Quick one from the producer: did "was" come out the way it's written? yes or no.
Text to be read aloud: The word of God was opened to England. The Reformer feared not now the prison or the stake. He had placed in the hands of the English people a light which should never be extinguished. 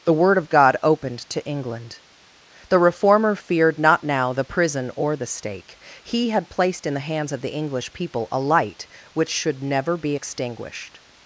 no